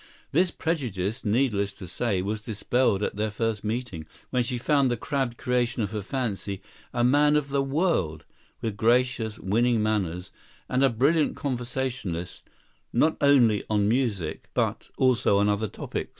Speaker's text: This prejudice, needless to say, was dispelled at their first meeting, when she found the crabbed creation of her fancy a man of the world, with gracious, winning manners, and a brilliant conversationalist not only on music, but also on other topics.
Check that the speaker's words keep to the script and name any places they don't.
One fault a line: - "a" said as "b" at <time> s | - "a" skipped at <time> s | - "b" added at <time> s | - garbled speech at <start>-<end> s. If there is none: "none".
none